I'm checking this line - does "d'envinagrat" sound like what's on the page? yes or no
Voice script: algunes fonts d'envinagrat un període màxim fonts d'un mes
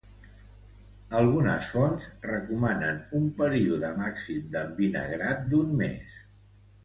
no